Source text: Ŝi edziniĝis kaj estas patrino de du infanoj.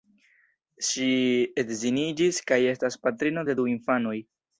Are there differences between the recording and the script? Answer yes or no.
no